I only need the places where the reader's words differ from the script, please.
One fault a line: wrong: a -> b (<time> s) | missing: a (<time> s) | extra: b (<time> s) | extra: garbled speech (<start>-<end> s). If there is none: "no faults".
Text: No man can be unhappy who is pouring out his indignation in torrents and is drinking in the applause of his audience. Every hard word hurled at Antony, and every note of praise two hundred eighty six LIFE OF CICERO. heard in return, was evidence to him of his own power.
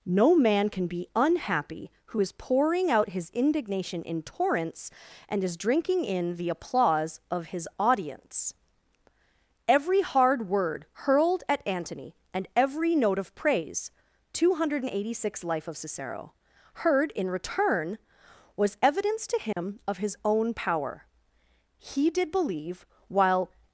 extra: He did believe while (21.9 s)